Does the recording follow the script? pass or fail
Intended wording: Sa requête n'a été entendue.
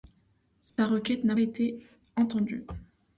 pass